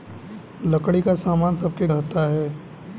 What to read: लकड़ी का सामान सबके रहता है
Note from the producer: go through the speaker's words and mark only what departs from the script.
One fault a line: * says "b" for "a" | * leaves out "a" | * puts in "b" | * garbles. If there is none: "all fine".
all fine